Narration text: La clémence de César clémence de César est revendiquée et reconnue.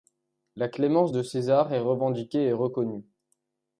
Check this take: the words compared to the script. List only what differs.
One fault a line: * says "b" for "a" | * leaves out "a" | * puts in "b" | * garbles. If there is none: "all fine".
* leaves out "clémence de César"